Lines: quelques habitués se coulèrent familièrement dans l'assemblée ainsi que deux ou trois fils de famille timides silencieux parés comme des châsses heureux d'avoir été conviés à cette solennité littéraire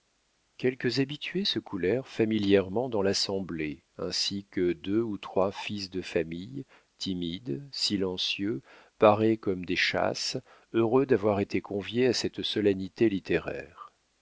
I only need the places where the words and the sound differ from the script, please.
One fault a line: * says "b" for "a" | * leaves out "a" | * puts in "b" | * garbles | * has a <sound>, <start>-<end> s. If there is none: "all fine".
all fine